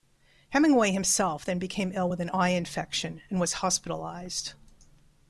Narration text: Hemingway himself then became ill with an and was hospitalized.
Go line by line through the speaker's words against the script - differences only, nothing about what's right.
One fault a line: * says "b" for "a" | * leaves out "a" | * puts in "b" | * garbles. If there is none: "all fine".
* puts in "eye infection"